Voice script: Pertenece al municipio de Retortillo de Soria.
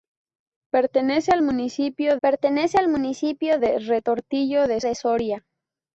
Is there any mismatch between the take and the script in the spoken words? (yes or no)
yes